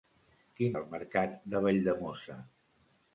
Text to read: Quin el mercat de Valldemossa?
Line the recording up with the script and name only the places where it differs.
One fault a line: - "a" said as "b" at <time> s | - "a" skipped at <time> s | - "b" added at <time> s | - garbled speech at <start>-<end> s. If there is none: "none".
none